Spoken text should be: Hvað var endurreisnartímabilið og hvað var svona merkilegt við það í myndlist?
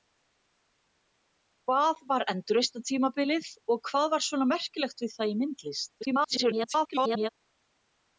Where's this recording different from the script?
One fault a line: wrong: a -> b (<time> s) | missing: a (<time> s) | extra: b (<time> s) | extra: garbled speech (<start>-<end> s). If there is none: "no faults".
extra: garbled speech (6.0-7.3 s)